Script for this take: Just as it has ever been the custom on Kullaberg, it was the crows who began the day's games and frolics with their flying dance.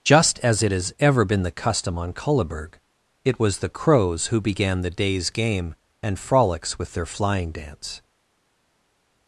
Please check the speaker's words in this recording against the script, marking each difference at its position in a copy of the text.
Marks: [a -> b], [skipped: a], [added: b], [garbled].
Just as it has ever been the custom on Kullaberg, it was the crows who began the day's [games -> game] and frolics with their flying dance.